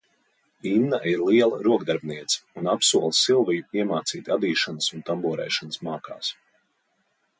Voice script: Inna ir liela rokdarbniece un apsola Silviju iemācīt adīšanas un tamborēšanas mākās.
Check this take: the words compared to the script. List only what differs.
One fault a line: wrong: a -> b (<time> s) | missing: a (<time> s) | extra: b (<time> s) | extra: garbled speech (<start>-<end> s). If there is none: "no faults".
no faults